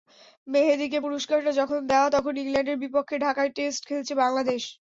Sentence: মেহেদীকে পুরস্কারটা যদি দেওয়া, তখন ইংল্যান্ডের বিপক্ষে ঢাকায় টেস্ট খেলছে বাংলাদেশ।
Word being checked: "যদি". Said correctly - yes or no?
no